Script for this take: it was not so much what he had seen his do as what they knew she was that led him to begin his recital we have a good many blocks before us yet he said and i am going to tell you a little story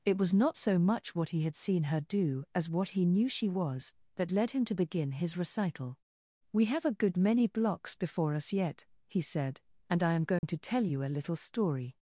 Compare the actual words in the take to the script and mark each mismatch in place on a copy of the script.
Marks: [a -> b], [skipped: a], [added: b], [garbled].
it was not so much what he had seen [his -> her] do as what [they -> he] knew she was that led him to begin his recital we have a good many blocks before us yet he said and i am going to tell you a little story